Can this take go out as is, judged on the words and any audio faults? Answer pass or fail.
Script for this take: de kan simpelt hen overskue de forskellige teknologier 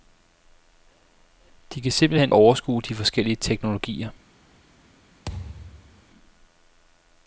fail